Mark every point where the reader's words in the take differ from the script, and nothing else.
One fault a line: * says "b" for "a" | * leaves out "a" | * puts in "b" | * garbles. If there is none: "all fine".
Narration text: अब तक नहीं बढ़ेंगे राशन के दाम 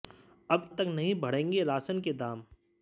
all fine